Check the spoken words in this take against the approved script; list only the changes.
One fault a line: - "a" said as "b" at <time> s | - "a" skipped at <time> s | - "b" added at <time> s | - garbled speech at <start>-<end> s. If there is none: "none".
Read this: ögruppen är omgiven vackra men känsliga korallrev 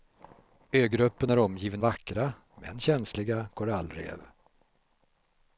none